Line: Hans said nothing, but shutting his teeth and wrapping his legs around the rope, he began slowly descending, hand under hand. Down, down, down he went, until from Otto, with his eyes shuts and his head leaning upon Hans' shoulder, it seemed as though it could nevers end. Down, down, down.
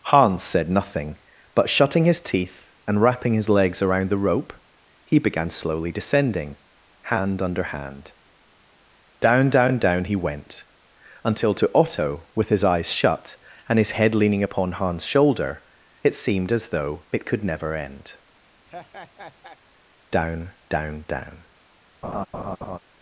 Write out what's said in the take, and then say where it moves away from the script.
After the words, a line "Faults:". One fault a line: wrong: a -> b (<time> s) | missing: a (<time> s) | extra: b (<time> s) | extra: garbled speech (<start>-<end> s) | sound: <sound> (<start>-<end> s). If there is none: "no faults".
Hans said nothing, but shutting his teeth and wrapping his legs around the rope, he began slowly descending, hand under hand. Down, down, down he went, until to Otto, with his eyes shut and his head leaning upon Hans' shoulder, it seemed as though it could never end. Down, down, down.
Faults:
wrong: from -> to (11.5 s)
wrong: shuts -> shut (12.9 s)
wrong: nevers -> never (17.4 s)
sound: laugh (18.7-19.6 s)
sound: laugh (22.0-22.8 s)